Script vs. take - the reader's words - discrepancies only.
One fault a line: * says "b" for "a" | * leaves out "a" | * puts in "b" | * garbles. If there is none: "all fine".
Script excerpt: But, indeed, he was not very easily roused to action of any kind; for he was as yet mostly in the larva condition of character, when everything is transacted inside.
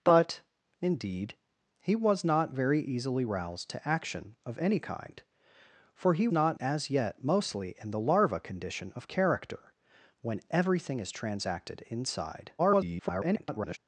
* says "not" for "was"
* garbles